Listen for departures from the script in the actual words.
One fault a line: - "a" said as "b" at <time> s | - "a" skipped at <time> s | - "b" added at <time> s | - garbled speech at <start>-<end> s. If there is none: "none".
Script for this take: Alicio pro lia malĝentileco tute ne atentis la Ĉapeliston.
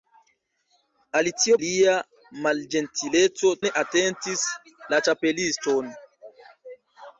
- "pro" skipped at 1.6 s
- "tute" skipped at 3.5 s